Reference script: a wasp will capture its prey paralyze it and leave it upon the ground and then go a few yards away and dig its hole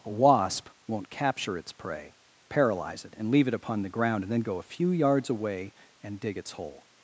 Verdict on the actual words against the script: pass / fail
fail